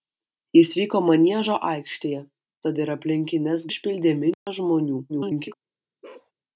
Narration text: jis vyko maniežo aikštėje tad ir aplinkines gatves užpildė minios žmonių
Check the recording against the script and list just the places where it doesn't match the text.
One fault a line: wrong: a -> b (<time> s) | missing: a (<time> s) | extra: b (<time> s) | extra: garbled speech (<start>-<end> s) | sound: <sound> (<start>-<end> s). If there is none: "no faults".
missing: gatves (3.7 s)
sound: dropout (4.3-4.5 s)
extra: garbled speech (5.1-5.5 s)
sound: bark (6.0-6.3 s)